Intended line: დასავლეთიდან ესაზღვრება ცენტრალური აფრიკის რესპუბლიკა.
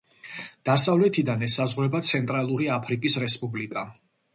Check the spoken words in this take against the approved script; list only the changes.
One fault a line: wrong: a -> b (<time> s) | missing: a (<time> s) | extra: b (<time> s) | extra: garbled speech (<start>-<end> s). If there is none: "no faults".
no faults